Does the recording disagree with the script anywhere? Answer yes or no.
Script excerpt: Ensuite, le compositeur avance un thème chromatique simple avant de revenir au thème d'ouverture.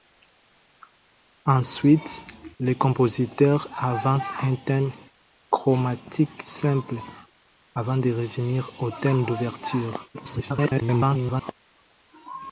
yes